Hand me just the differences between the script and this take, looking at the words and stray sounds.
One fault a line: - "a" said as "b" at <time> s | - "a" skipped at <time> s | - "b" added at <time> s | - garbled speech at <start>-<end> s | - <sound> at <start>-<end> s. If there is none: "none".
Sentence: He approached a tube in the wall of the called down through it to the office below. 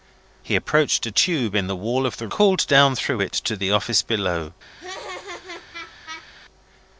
- laugh at 4.8-6.3 s